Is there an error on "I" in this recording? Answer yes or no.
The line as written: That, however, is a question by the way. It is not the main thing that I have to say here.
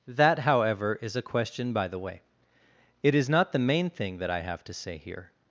no